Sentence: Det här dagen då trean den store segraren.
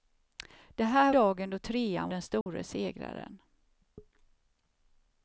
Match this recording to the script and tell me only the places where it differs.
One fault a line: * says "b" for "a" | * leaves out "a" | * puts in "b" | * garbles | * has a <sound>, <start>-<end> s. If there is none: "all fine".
* has a dropout, 2.4-2.5 s